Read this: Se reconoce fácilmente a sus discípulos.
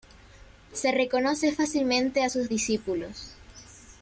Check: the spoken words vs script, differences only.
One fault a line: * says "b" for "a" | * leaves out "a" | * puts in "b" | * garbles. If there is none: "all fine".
all fine